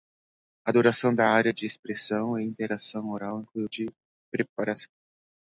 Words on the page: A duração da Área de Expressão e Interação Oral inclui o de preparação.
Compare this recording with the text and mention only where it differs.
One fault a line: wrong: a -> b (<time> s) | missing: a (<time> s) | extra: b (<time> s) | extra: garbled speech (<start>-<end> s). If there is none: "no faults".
no faults